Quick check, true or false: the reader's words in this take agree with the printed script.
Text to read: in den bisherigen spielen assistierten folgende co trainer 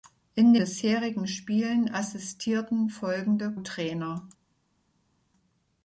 false